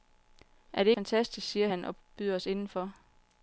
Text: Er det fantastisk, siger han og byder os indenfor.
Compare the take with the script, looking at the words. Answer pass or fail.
pass